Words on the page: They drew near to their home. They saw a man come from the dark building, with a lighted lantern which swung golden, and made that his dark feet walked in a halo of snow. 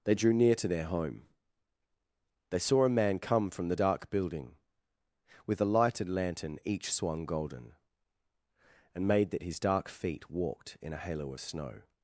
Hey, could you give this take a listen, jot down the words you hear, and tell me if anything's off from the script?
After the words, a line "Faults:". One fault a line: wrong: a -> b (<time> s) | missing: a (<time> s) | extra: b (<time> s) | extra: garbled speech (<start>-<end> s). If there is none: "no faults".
They drew near to their home. They saw a man come from the dark building, with a lighted lantern each swung golden, and made that his dark feet walked in a halo of snow.
Faults:
wrong: which -> each (6.6 s)